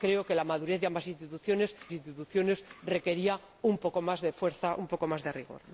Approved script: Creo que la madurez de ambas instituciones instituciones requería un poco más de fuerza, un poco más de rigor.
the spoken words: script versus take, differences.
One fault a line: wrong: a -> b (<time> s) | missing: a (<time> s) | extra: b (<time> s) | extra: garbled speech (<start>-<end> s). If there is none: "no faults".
no faults